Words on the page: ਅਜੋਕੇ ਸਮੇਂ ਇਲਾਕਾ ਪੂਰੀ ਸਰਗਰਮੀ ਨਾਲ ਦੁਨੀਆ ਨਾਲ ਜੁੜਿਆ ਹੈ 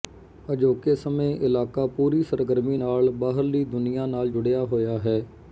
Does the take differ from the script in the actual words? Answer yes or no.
yes